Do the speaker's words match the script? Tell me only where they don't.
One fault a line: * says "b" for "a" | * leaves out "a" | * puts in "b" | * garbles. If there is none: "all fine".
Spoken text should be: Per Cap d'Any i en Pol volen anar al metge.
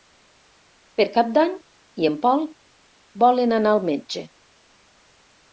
all fine